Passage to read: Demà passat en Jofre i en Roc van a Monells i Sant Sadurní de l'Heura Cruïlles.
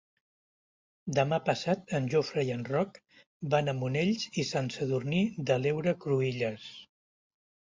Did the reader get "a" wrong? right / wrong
right